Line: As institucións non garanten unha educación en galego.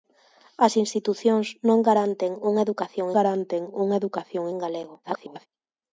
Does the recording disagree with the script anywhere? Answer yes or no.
yes